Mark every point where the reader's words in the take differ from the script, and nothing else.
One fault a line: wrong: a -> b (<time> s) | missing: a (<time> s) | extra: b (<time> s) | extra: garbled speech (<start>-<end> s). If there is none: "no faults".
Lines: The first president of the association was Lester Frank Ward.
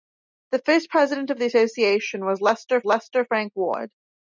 extra: Lester (2.8 s)